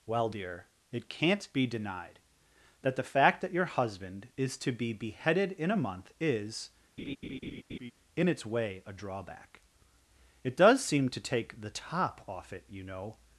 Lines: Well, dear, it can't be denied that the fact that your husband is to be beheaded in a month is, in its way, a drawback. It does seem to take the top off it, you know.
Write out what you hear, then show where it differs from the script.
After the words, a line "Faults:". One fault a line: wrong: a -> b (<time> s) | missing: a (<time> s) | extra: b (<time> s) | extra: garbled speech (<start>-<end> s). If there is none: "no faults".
Well, dear, it can't be denied that the fact that your husband is to be beheaded in a month is, in its way, a drawback. It does seem to take the top off it, you know.
Faults:
no faults